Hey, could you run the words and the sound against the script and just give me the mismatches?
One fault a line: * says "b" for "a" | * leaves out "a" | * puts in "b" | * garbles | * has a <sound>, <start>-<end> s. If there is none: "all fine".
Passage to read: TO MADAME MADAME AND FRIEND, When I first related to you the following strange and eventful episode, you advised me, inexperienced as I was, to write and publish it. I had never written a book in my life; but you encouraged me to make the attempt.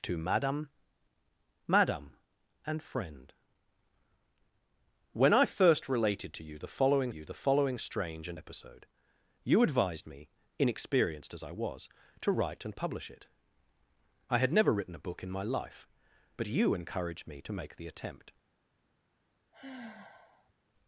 * puts in "you the following"
* leaves out "eventful"
* has a sigh, 19.5-20.5 s